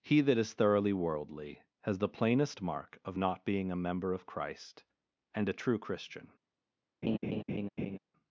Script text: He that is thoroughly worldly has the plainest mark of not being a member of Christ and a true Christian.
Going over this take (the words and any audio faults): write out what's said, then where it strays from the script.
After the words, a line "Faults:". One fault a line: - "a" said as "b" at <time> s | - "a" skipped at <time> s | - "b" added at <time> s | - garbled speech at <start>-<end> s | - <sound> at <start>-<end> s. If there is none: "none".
He that is thoroughly worldly has the plainest mark of not being a member of Christ and a true Christian.
Faults:
- laugh at 7.0-8.0 s